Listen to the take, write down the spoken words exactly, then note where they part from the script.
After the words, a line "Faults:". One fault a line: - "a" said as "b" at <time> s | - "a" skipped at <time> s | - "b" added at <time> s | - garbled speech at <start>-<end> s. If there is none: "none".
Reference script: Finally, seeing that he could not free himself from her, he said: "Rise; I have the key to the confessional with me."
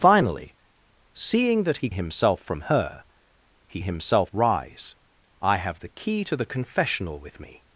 Finally, seeing that he himself from her, he himself: "Rise; I have the key to the confessional with me."
Faults:
- "could not free" skipped at 1.9 s
- "said" said as "himself" at 3.8 s